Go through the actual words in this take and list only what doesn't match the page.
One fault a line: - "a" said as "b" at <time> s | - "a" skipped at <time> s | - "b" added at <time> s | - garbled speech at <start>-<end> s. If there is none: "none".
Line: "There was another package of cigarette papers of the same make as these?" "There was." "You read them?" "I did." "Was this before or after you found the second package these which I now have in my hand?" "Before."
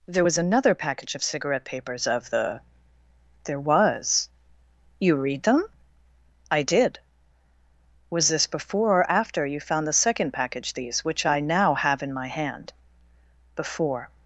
- "same make as these" skipped at 2.6 s